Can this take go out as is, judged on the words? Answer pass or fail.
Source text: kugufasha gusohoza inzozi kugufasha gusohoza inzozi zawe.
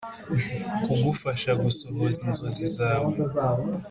fail